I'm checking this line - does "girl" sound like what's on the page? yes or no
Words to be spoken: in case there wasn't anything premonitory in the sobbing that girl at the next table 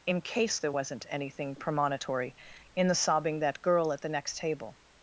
yes